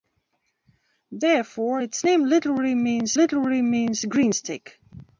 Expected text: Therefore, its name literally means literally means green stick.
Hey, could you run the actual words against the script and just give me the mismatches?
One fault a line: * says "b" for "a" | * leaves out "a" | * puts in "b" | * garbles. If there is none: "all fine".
all fine